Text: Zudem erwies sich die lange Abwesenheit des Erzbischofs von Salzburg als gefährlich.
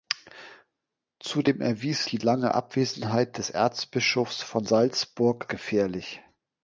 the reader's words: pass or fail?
fail